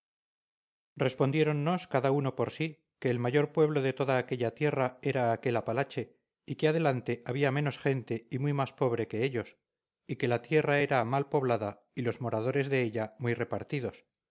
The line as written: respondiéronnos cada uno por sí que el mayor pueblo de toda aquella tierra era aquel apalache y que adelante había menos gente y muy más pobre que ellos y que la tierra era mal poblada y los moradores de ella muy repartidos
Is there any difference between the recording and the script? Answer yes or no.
no